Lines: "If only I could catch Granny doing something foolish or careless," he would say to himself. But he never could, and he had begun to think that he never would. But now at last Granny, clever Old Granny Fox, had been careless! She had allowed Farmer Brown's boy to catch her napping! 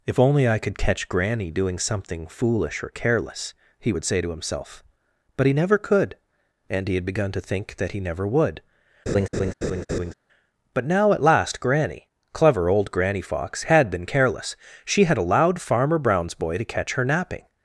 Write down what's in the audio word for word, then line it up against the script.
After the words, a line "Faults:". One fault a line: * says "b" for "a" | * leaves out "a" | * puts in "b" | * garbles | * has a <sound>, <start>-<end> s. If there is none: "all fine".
"If only I could catch Granny doing something foolish or careless," he would say to himself. But he never could, and he had begun to think that he never would. But now at last Granny, clever Old Granny Fox, had been careless! She had allowed Farmer Brown's boy to catch her napping!
Faults:
* has a laugh, 9.1-10.1 s